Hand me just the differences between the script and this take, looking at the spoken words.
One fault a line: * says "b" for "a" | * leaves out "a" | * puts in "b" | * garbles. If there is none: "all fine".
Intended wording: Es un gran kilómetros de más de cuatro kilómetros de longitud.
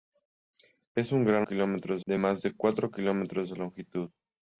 all fine